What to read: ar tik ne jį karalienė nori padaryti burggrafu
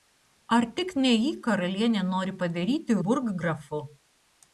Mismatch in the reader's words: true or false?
false